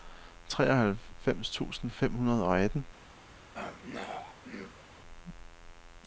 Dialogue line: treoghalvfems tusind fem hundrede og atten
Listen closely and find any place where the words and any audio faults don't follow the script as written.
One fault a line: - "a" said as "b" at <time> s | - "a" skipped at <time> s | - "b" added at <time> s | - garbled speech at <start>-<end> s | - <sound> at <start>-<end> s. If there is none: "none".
- throat clearing at 3.5-4.8 s